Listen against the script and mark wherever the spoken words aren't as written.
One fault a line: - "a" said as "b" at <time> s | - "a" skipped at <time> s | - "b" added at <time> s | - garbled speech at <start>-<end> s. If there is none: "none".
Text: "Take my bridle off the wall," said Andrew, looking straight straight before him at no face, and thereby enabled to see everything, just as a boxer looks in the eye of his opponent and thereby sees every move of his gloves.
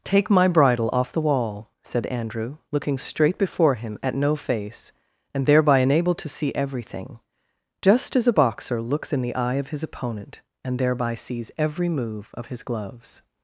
- "straight" skipped at 3.4 s